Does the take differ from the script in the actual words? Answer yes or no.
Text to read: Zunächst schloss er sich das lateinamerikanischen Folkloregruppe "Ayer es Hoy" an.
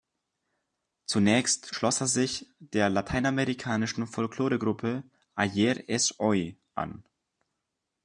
yes